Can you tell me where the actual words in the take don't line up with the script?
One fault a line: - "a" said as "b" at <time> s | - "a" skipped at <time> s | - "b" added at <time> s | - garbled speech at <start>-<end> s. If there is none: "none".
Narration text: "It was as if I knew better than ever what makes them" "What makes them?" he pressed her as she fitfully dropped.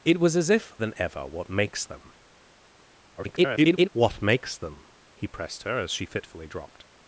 - "I knew better" skipped at 0.7 s
- garbled speech at 3.2-3.9 s